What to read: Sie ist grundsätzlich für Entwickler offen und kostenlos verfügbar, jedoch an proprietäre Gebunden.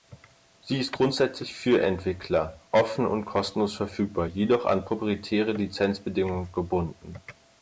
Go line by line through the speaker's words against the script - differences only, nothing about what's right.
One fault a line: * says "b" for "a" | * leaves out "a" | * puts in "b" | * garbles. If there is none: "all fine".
* puts in "Lizenzbedingungen"